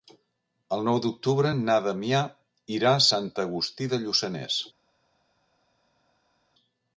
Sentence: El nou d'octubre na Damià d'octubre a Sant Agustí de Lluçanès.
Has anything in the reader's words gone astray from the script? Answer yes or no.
yes